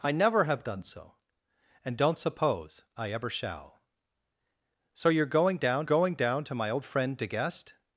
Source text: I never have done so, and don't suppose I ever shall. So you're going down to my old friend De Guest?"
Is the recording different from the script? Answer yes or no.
yes